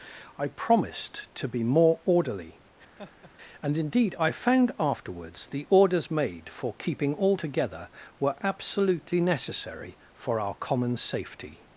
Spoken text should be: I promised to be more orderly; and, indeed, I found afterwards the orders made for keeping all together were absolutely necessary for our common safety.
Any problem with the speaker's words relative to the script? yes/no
no